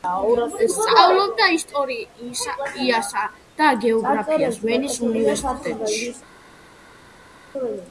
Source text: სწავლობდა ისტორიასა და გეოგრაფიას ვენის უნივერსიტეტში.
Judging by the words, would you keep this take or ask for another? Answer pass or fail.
pass